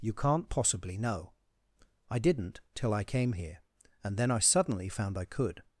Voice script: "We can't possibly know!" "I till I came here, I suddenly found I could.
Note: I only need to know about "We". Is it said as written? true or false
false